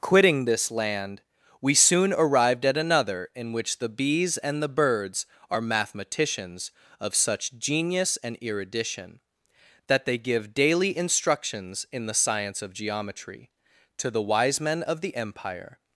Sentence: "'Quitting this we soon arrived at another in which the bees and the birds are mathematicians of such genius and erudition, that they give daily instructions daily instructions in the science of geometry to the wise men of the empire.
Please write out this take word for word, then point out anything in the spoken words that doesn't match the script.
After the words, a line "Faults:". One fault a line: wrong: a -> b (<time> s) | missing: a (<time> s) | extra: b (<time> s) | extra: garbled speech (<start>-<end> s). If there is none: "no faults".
"'Quitting this land, we soon arrived at another in which the bees and the birds are mathematicians of such genius and erudition, that they give daily instructions in the science of geometry to the wise men of the empire.
Faults:
extra: land (0.7 s)
missing: daily instructions (11.8 s)